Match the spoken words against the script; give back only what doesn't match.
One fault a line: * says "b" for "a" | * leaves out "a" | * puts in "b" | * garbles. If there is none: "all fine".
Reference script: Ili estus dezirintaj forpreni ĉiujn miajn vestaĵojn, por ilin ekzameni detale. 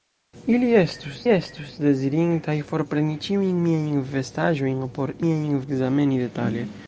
* puts in "estus"
* says "miajn" for "ilin"